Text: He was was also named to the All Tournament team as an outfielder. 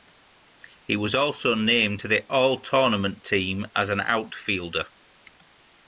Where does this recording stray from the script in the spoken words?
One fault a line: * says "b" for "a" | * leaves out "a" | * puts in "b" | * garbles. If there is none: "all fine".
* leaves out "was"